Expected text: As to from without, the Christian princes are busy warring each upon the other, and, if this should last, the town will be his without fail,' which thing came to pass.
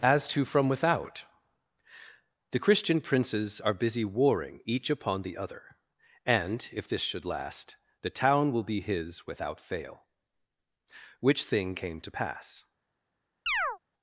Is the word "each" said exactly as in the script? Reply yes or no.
yes